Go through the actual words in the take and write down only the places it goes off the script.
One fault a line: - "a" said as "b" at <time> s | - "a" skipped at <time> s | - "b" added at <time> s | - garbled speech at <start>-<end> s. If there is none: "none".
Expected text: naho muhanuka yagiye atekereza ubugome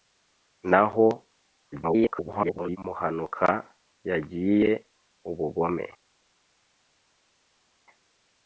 - garbled speech at 1.7-2.8 s
- "atekereza" skipped at 4.7 s